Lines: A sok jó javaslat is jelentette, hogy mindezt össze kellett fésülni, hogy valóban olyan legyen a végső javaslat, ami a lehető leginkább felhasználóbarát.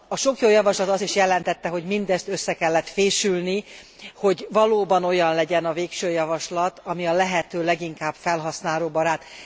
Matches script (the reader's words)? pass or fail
fail